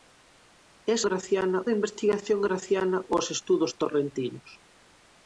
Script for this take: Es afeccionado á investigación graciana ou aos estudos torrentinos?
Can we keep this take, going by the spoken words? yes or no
no